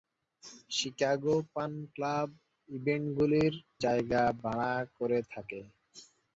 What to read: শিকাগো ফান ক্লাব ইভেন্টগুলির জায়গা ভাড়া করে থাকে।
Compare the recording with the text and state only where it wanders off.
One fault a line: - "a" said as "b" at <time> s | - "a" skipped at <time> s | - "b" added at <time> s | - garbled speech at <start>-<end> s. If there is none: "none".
none